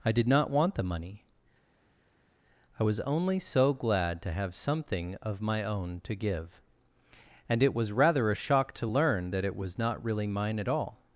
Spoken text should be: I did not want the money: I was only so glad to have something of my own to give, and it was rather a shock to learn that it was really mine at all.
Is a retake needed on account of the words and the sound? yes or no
yes